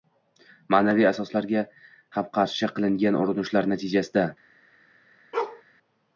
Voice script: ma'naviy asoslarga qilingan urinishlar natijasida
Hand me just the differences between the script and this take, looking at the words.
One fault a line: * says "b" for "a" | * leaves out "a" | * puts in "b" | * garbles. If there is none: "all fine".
* puts in "ham qarshi"